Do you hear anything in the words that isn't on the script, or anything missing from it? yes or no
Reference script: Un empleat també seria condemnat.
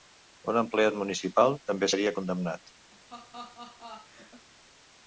yes